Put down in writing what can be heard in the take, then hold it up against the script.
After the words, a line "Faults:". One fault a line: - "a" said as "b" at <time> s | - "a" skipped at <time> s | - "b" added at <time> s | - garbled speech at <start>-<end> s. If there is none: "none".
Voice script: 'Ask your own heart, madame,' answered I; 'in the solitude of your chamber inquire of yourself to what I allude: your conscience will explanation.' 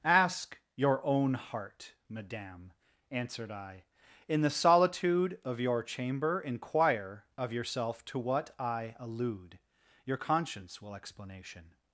'Ask your own heart, madame,' answered I; 'in the solitude of your chamber inquire of yourself to what I allude: your conscience will explanation.'
Faults:
none